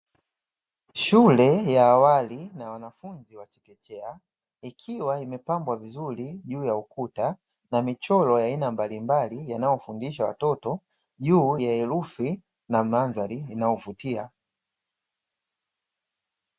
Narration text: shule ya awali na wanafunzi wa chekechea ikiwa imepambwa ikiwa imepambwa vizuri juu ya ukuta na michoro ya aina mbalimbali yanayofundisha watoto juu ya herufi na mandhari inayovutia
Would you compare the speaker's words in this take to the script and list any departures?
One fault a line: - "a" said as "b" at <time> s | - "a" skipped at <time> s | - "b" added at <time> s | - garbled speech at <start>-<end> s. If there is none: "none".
- "ikiwa imepambwa" skipped at 5.8 s